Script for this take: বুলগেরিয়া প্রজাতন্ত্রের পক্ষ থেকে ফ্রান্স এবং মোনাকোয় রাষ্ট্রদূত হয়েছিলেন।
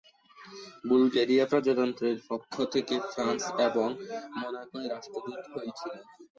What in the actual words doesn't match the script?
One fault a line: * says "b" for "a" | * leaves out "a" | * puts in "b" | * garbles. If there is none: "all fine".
all fine